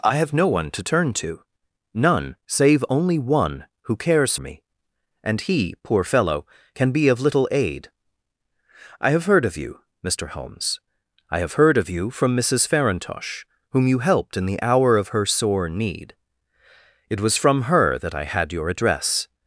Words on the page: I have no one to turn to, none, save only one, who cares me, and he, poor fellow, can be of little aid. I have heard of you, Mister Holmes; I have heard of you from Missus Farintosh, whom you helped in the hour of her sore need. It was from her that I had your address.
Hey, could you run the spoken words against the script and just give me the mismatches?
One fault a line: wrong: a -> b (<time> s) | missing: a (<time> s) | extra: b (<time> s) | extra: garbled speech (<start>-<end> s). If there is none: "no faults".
no faults